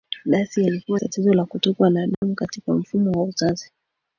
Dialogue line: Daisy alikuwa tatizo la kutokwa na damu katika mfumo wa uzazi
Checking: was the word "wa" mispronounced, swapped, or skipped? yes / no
no